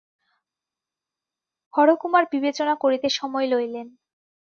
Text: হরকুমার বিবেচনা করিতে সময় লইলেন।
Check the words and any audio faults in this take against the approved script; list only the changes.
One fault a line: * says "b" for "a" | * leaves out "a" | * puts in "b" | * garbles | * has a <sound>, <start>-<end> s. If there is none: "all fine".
all fine